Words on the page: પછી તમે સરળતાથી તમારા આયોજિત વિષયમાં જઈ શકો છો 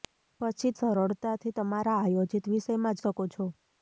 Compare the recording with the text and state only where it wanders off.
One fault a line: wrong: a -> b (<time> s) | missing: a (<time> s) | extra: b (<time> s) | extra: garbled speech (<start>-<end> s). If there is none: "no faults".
missing: તમે (0.7 s)
missing: જઈ (3.0 s)